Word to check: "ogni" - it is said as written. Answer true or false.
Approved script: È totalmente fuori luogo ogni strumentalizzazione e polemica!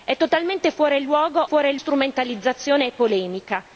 false